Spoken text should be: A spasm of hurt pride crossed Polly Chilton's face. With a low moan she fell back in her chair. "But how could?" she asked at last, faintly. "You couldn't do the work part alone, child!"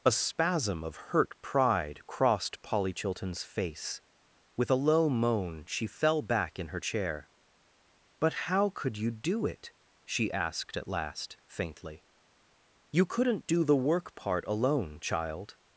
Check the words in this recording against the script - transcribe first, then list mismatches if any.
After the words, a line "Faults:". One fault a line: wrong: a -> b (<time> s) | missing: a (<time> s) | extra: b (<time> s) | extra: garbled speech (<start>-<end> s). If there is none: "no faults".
A spasm of hurt pride crossed Polly Chilton's face. With a low moan she fell back in her chair. "But how could you do it?" she asked at last, faintly. "You couldn't do the work part alone, child!"
Faults:
extra: you do it (9.0 s)